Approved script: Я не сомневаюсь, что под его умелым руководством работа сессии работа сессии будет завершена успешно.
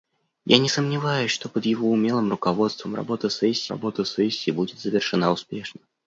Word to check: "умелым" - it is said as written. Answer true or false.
true